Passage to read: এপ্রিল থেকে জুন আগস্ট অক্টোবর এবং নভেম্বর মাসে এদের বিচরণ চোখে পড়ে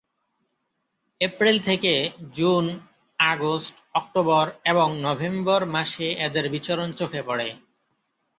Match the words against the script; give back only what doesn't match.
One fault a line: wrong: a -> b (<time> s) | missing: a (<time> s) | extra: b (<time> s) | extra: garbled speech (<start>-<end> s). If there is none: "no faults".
no faults